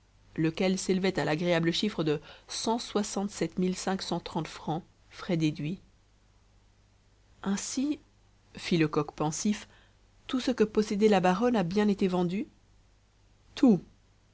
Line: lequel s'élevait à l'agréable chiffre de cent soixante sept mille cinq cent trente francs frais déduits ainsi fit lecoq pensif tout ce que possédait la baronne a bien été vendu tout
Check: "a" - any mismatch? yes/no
no